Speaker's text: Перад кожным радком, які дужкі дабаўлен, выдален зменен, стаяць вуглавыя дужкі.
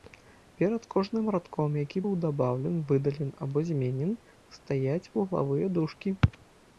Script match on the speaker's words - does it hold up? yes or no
no